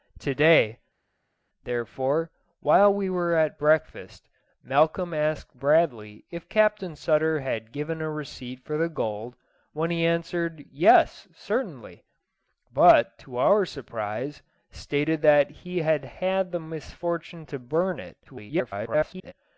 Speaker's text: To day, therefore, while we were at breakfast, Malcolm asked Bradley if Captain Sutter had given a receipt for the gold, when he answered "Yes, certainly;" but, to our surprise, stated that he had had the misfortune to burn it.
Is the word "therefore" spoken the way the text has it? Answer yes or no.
yes